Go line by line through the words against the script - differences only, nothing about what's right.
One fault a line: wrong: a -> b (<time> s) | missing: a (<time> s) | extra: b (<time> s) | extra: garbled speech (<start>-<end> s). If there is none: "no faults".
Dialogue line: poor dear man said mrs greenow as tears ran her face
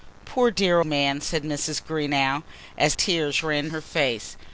no faults